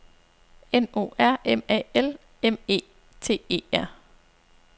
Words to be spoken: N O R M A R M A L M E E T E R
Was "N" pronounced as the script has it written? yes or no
yes